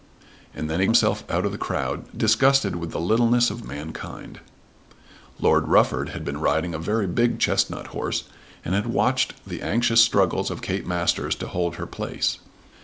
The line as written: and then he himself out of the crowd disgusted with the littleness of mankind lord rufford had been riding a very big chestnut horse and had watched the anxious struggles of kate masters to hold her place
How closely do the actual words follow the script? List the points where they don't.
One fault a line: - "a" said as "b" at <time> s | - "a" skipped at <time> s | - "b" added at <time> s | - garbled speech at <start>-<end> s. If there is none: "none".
none